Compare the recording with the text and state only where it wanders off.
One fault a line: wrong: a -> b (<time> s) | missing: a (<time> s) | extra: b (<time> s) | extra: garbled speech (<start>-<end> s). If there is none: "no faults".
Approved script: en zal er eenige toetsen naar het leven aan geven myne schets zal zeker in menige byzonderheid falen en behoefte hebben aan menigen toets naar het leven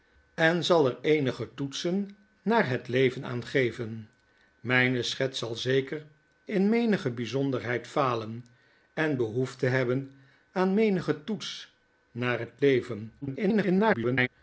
extra: garbled speech (13.2-14.3 s)